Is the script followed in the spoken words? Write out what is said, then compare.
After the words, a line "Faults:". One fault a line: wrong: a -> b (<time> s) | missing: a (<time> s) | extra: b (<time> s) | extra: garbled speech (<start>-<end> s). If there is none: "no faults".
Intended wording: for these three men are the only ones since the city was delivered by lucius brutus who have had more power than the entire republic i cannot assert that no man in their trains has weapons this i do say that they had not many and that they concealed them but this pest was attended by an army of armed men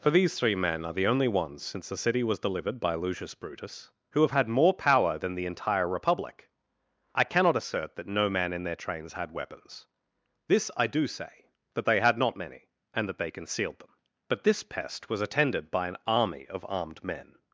for these three men are the only ones since the city was delivered by lucius brutus who have had more power than the entire republic i cannot assert that no man in their trains had weapons this i do say that they had not many and that they concealed them but this pest was attended by an army of armed men
Faults:
wrong: has -> had (9.1 s)